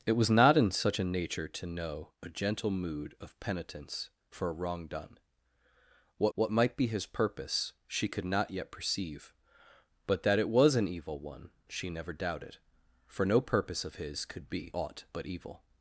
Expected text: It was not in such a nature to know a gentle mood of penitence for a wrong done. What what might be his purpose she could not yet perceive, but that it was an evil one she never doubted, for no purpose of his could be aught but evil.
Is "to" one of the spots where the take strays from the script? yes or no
no